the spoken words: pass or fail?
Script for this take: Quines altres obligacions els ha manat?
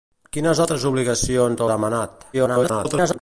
fail